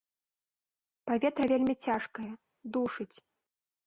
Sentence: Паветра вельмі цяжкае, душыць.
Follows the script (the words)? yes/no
yes